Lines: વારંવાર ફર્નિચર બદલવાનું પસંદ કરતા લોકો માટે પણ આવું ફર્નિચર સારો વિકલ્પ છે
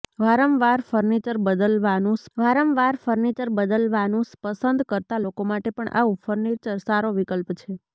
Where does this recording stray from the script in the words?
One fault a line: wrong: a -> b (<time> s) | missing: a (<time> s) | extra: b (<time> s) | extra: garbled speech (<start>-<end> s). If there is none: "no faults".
extra: વારંવાર ફર્નિચર બદલવાનું (2.4 s)